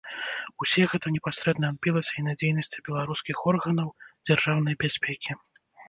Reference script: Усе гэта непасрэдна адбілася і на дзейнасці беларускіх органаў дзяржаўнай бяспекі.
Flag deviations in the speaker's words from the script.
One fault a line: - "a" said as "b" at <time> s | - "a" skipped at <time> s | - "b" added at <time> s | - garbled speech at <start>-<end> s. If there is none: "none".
none